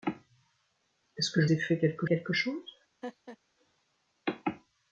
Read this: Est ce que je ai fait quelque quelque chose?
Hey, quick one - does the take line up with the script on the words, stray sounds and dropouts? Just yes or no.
no